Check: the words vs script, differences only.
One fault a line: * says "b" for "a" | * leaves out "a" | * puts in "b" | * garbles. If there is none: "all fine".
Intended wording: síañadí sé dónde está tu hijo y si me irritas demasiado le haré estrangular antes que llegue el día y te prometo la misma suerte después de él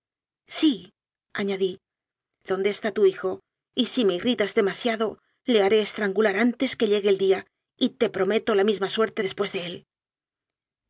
* leaves out "sé"